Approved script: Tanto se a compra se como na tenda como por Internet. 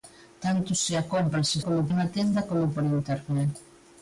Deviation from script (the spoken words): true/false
false